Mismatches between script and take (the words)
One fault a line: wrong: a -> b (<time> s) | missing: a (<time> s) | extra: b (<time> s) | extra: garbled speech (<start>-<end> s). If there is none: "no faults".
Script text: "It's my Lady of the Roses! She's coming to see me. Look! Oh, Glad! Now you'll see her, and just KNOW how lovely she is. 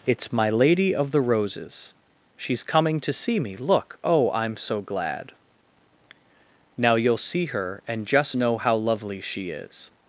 extra: I'm so (4.3 s)